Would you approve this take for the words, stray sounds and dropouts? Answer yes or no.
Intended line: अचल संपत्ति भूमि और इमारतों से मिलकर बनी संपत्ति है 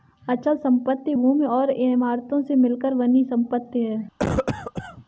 no